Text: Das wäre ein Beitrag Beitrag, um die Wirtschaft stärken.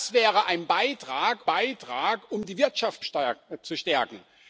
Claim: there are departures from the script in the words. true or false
false